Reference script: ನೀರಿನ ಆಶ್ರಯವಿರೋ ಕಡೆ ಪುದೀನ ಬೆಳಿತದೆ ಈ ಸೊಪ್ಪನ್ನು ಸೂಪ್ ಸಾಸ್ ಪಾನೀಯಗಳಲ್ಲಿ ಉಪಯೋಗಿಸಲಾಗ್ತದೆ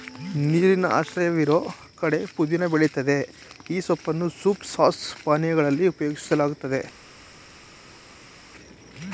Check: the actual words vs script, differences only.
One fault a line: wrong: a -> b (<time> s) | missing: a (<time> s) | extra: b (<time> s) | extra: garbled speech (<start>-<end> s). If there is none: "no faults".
no faults